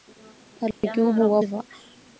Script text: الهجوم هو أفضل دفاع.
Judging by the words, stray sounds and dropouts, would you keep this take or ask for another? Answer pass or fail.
fail